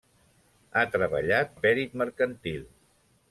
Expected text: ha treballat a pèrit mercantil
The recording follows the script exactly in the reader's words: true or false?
true